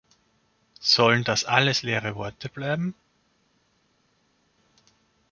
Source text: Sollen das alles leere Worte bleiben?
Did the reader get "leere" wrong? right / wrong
right